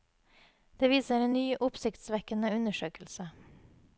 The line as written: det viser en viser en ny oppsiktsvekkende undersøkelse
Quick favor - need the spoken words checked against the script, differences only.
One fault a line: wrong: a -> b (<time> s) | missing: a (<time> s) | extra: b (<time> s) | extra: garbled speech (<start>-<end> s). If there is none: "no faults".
missing: viser en (1.4 s)